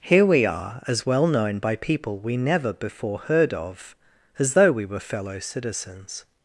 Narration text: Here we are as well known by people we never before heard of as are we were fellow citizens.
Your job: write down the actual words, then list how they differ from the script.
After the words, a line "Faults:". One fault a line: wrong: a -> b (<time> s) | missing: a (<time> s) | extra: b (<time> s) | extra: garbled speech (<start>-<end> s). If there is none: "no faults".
Here we are as well known by people we never before heard of as though we were fellow citizens.
Faults:
wrong: are -> though (4.5 s)